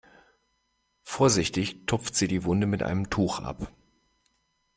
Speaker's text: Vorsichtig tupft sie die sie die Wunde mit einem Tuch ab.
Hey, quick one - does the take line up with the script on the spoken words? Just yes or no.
no